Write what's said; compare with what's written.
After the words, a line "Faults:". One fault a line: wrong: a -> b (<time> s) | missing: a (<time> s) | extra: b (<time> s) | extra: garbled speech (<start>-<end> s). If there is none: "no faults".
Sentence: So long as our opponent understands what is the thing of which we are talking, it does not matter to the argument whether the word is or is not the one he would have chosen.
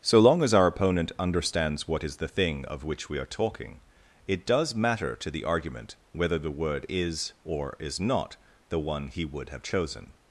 So long as our opponent understands what is the thing of which we are talking, it does matter to the argument whether the word is or is not the one he would have chosen.
Faults:
missing: not (4.7 s)